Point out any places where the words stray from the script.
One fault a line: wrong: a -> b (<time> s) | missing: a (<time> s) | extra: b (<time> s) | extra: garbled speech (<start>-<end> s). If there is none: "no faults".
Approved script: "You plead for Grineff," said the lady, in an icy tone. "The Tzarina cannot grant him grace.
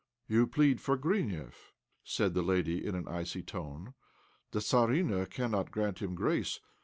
no faults